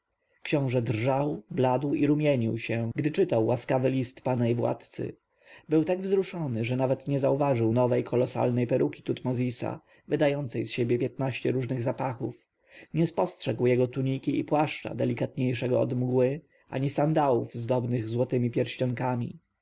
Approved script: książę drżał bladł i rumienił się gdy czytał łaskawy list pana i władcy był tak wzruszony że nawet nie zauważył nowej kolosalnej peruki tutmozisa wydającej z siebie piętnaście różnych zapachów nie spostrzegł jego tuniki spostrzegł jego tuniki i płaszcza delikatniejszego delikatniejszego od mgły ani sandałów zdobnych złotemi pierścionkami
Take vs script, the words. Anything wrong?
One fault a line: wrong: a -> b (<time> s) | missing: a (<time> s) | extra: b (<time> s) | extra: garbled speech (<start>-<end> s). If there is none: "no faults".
missing: spostrzegł jego tuniki (14.4 s)
missing: delikatniejszego (15.8 s)